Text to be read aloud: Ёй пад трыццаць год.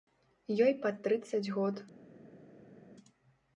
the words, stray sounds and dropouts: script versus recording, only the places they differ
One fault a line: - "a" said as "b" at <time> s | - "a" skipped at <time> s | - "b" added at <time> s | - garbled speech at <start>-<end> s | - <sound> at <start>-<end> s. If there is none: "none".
none